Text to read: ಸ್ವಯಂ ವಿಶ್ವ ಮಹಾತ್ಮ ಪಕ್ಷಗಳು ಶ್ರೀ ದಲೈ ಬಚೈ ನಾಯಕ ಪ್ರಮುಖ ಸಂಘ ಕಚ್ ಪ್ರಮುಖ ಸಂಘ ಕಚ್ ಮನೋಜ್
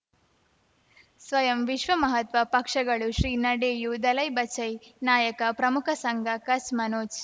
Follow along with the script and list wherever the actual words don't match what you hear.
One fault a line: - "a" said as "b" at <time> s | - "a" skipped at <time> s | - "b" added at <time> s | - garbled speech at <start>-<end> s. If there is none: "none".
- "ನಡೆಯೂ" added at 3.4 s
- "ಪ್ರಮುಖ ಸಂಘ ಕಚ್" skipped at 6.7 s